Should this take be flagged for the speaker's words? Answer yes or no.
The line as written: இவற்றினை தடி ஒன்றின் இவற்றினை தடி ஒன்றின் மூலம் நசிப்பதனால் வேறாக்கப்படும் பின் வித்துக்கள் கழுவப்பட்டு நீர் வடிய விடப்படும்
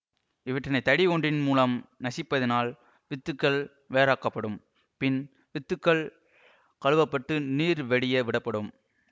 yes